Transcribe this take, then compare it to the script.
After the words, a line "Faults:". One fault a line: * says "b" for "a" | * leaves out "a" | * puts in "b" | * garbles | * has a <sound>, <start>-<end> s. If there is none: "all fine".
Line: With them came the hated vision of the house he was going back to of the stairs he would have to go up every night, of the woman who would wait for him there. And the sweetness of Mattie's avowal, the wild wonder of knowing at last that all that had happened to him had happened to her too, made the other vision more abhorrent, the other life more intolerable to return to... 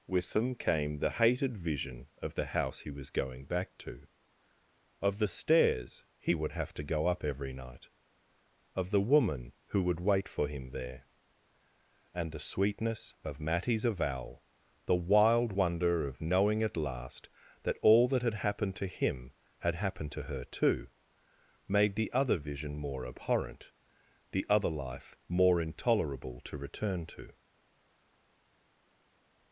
With them came the hated vision of the house he was going back to of the stairs he would have to go up every night, of the woman who would wait for him there. And the sweetness of Mattie's avowal, the wild wonder of knowing at last that all that had happened to him had happened to her too, made the other vision more abhorrent, the other life more intolerable to return to...
Faults:
all fine